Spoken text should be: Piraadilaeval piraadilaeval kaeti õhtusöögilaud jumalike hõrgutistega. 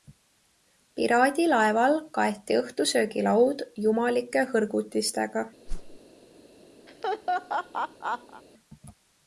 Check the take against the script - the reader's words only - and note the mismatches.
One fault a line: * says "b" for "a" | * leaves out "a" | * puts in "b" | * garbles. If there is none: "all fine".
* leaves out "piraadilaeval"